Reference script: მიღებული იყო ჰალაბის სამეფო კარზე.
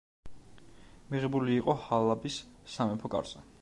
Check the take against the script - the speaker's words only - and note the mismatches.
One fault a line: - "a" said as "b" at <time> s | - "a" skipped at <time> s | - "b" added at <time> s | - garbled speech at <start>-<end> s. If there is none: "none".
none